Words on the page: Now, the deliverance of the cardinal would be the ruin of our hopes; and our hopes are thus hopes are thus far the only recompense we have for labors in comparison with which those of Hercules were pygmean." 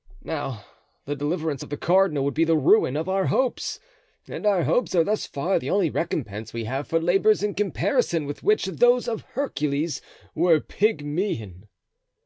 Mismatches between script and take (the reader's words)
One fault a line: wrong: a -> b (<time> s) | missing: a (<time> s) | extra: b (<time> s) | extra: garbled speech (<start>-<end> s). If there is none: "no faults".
missing: hopes are thus (5.3 s)